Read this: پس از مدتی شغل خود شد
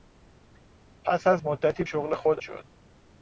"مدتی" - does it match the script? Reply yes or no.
yes